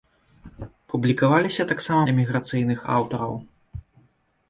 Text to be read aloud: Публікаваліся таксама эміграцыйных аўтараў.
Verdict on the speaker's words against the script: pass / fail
pass